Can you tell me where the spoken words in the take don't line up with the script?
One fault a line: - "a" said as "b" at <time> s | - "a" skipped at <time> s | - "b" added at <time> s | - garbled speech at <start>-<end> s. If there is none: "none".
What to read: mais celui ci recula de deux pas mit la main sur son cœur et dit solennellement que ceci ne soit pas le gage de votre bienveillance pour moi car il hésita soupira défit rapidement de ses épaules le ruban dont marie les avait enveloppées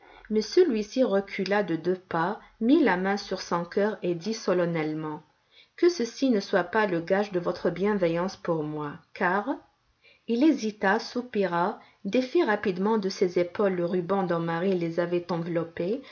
none